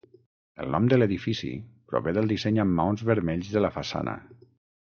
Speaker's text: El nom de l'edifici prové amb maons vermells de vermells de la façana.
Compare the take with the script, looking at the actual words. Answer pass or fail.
fail